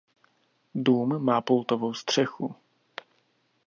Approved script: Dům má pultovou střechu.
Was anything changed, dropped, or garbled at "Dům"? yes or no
no